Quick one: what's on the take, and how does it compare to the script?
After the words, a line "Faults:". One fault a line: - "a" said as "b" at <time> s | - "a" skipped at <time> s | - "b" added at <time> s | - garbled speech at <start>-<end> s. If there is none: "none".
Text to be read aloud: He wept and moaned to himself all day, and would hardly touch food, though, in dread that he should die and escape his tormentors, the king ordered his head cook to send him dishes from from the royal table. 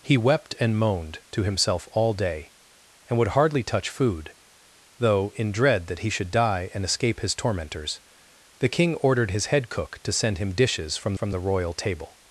He wept and moaned to himself all day, and would hardly touch food, though, in dread that he should die and escape his tormentors, the king ordered his head cook to send him dishes from from the royal table.
Faults:
none